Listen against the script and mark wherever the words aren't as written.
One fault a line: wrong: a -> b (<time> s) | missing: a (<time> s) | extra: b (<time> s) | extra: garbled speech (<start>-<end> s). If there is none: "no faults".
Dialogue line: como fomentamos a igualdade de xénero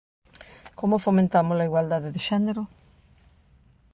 no faults